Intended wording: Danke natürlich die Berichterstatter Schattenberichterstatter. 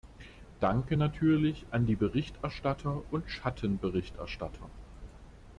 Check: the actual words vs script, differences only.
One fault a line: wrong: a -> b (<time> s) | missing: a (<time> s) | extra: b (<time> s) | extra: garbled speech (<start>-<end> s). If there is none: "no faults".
extra: an (1.7 s)
extra: und (3.1 s)